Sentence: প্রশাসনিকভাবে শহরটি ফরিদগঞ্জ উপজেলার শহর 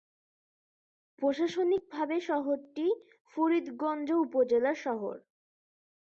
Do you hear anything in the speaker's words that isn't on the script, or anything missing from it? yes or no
no